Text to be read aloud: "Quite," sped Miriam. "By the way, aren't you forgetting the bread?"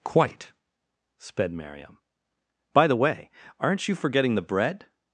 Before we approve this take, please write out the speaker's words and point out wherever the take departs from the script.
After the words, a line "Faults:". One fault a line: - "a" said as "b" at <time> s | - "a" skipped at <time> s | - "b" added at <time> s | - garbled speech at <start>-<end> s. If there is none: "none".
"Quite," sped Miriam. "By the way, aren't you forgetting the bread?"
Faults:
none